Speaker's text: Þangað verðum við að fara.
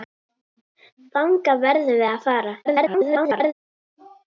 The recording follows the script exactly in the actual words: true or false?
false